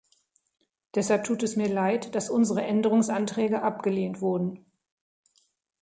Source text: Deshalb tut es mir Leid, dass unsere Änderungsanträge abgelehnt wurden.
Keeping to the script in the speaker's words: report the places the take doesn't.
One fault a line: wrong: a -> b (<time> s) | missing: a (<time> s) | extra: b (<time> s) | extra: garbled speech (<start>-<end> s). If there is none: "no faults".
no faults